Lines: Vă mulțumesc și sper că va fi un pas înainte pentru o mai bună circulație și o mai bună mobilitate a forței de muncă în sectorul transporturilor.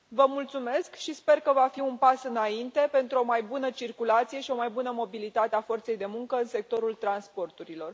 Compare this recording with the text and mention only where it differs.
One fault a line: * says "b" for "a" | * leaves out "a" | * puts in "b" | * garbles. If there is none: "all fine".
all fine